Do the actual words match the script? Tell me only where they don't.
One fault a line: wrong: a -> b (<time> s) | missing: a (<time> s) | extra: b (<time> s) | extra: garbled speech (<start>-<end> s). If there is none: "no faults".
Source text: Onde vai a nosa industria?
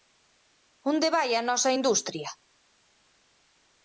no faults